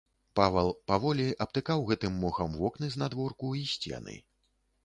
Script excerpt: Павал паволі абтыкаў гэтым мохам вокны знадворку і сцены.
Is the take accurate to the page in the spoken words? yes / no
yes